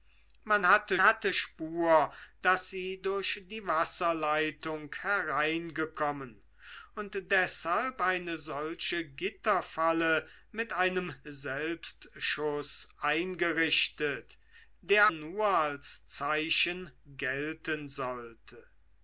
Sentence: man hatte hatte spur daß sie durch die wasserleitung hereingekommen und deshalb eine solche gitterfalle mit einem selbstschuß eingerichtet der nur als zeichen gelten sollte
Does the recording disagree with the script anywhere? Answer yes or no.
no